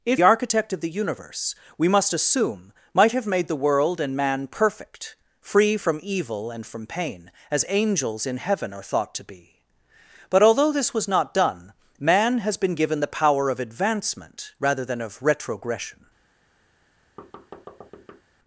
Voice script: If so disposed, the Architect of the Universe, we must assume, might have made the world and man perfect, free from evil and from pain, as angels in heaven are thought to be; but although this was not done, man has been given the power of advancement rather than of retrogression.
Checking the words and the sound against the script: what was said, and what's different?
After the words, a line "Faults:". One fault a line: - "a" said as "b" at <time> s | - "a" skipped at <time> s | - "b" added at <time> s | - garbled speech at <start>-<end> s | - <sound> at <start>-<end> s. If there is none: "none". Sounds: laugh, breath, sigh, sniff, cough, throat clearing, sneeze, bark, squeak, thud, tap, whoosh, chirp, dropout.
If Architect of the Universe, we must assume, might have made the world and man perfect, free from evil and from pain, as angels in heaven are thought to be; but although this was not done, man has been given the power of advancement rather than of retrogression.
Faults:
- "so disposed the" skipped at 0.2 s
- thud at 17.2-18.2 s